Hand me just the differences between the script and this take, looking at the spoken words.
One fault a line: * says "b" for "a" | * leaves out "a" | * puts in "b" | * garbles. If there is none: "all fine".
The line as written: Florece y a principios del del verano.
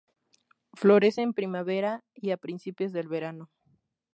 * puts in "en primavera"
* leaves out "del"